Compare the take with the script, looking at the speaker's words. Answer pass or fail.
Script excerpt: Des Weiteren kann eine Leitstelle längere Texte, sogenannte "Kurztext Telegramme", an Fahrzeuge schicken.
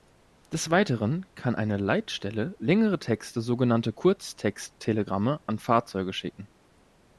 pass